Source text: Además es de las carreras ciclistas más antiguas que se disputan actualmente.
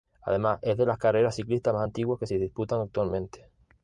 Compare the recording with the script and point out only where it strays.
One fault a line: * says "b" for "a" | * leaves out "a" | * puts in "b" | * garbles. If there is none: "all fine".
all fine